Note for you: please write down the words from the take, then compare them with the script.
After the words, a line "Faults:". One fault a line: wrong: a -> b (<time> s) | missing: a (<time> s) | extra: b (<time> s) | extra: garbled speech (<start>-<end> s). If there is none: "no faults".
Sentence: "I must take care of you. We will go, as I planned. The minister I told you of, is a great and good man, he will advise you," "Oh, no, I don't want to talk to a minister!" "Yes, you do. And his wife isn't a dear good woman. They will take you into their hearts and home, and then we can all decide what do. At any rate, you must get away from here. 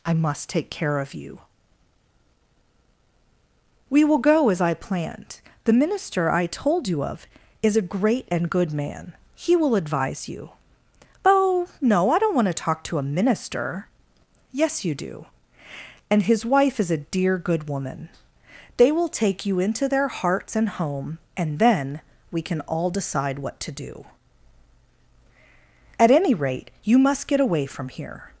"I must take care of you. We will go, as I planned. The minister I told you of, is a great and good man, he will advise you," "Oh, no, I don't want to talk to a minister!" "Yes, you do. And his wife is a dear good woman. They will take you into their hearts and home, and then we can all decide what to do. At any rate, you must get away from here.
Faults:
wrong: isn't -> is (16.8 s)
extra: to (23.6 s)